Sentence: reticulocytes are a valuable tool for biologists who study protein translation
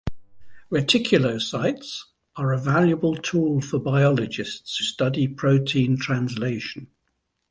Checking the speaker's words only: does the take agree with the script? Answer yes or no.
no